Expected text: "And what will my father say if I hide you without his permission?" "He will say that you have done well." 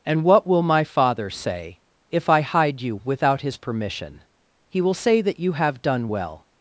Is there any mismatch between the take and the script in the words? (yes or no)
no